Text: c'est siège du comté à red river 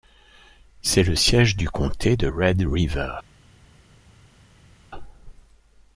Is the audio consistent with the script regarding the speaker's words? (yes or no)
no